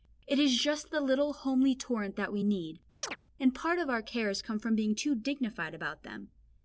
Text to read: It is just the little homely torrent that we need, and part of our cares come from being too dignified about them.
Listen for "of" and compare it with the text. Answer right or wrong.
right